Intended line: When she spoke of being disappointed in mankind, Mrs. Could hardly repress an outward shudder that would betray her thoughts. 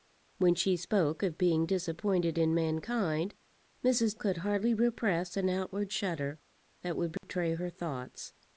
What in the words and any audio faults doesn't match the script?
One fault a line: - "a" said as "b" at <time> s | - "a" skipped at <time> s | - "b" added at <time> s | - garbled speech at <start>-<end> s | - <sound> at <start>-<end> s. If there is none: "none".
- dropout at 7.2-7.2 s